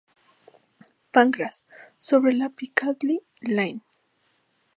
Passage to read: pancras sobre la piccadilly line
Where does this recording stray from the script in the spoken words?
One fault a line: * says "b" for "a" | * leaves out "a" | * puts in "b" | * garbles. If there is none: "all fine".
all fine